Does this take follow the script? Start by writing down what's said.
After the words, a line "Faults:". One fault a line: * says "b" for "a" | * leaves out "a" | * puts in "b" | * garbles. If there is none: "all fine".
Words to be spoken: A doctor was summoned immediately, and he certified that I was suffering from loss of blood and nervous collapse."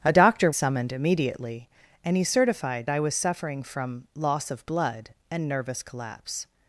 A doctor summoned immediately, and he certified I was suffering from loss of blood and nervous collapse."
Faults:
* leaves out "was"
* leaves out "that"